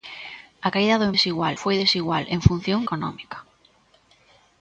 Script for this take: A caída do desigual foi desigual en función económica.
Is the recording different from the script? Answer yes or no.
no